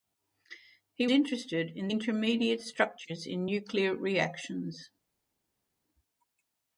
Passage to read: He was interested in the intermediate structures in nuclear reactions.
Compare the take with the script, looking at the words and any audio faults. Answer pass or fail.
fail